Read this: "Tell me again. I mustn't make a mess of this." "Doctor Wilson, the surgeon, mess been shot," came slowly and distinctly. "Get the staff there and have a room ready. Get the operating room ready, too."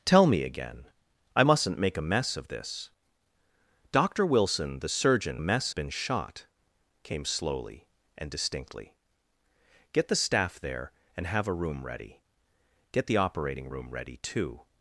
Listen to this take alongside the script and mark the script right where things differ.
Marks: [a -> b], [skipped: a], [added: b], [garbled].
"Tell me again. I mustn't make a mess of this." "Doctor Wilson, the surgeon, mess been shot," came slowly and distinctly. "Get the staff there and have a room ready. Get the operating room ready, too."